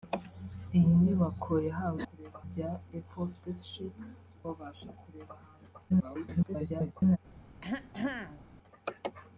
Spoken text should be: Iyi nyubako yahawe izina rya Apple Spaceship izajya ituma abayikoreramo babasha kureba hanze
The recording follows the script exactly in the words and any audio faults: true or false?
false